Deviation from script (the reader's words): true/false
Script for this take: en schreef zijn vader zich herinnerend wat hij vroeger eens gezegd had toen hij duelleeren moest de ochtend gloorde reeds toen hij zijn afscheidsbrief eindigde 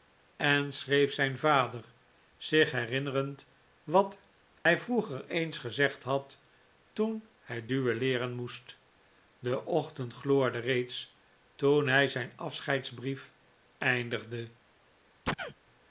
false